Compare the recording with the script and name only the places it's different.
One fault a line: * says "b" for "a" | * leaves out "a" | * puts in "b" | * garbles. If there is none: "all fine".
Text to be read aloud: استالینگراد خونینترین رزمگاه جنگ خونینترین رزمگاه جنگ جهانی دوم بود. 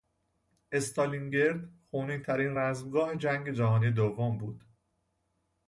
* leaves out "خونینترین رزمگاه جنگ"